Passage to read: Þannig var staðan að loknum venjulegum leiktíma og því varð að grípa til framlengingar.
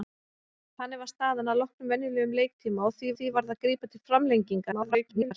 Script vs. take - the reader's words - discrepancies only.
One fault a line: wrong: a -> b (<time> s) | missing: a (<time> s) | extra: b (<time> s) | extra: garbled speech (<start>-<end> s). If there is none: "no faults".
extra: því (3.2 s)
extra: garbled speech (4.7-5.3 s)